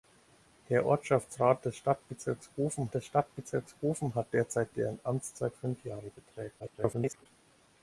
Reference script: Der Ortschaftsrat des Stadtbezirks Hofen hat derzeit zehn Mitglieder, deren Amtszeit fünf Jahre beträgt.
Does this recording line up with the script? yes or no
no